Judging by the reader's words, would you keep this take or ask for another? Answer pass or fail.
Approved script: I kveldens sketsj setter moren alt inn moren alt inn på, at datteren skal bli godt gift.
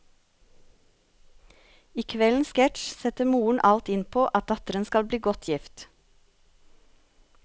fail